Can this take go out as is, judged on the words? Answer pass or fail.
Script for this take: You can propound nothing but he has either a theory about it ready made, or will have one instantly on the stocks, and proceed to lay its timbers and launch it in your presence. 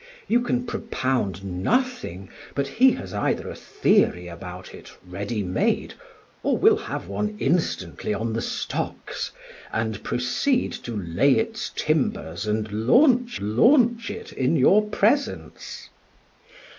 fail